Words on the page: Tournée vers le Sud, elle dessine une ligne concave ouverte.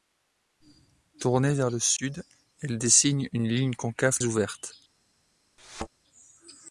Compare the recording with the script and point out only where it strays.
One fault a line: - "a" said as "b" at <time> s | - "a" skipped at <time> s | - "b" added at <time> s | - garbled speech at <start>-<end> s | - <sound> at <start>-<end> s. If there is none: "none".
- thud at 5.6-5.9 s